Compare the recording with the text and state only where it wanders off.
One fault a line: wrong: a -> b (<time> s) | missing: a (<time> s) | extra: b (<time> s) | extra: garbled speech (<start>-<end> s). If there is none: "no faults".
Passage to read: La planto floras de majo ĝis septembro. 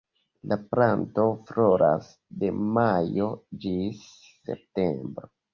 no faults